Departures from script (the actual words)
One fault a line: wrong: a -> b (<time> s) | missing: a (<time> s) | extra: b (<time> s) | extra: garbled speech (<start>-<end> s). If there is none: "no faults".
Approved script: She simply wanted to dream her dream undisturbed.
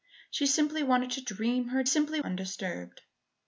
wrong: dream -> simply (1.8 s)